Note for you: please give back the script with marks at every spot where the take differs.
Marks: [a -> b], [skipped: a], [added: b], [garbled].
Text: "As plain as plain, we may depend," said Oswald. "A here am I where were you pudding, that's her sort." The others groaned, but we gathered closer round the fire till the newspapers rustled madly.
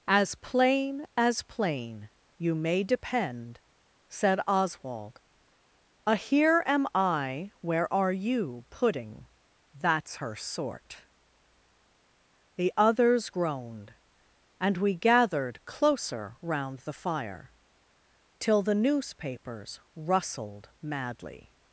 "As plain as plain, [we -> you] may depend," said Oswald. "A here am I where [were -> are] you pudding, that's her sort." The others groaned, [but -> and] we gathered closer round the fire till the newspapers rustled madly.